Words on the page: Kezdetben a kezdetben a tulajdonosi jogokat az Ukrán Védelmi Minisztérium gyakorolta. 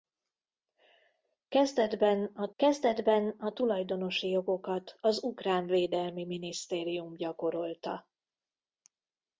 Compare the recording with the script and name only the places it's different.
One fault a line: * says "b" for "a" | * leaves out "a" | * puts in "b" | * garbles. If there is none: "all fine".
all fine